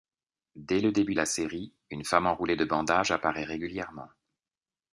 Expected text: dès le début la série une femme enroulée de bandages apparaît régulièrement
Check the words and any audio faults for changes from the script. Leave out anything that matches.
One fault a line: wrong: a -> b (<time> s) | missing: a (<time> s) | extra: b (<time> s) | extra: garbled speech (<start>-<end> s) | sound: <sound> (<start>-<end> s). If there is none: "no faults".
no faults